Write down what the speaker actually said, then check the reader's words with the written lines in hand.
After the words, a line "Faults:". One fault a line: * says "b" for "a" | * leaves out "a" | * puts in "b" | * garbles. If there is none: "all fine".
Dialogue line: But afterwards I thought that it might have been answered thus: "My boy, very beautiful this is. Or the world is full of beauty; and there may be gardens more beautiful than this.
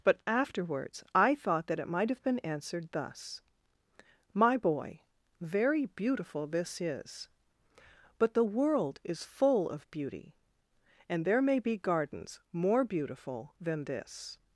But afterwards I thought that it might have been answered thus: "My boy, very beautiful this is. But the world is full of beauty; and there may be gardens more beautiful than this.
Faults:
* says "But" for "Or"